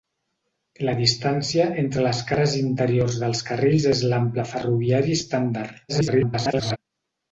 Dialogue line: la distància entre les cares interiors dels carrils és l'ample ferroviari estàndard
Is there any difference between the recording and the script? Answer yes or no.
yes